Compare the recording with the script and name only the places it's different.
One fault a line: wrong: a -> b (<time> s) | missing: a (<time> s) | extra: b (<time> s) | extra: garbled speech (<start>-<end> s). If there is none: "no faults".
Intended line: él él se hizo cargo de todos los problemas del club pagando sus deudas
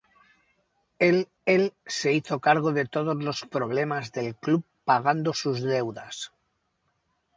no faults